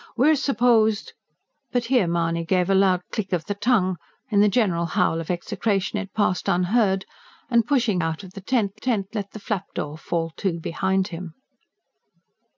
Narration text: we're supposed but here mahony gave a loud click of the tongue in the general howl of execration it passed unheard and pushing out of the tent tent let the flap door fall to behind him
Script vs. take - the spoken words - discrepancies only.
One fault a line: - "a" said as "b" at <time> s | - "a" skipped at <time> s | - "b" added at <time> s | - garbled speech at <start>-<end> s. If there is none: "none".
none